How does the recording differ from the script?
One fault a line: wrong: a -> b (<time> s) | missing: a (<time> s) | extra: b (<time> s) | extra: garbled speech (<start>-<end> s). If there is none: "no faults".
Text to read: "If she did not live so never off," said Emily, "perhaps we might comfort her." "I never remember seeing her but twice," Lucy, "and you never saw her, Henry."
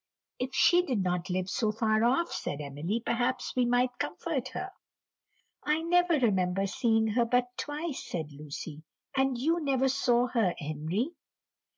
wrong: never -> far (1.7 s)
extra: said (8.0 s)